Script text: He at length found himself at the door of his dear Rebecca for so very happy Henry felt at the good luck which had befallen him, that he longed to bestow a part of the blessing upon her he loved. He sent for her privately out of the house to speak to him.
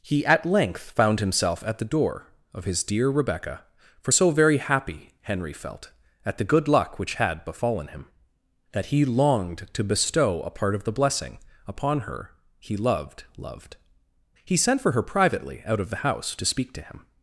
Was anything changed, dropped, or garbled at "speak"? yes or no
no